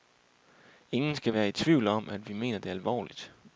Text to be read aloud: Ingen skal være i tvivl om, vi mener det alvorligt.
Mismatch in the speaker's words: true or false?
true